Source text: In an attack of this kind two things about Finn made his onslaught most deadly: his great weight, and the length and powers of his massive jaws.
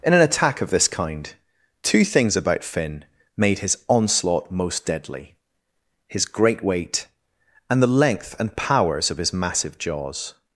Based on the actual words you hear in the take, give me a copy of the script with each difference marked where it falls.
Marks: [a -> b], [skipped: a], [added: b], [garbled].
In an attack of this kind two things about Finn made his onslaught most deadly: his great weight, and the length and powers of his massive jaws.